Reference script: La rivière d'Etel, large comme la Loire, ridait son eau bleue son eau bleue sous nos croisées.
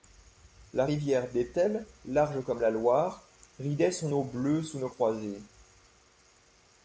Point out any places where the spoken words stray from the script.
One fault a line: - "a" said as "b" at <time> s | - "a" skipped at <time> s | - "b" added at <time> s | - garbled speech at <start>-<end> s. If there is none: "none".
- "son eau bleue" skipped at 4.6 s